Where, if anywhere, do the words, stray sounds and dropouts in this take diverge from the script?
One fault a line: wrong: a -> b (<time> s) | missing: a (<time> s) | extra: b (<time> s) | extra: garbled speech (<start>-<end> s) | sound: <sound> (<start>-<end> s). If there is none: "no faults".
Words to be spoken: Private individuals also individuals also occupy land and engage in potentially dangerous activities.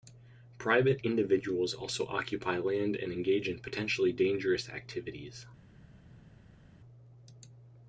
missing: individuals also (2.1 s)